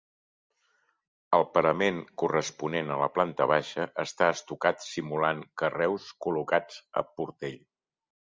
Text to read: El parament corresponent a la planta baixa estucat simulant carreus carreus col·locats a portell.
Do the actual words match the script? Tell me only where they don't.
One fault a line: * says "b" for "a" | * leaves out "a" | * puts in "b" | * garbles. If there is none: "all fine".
* puts in "està"
* leaves out "carreus"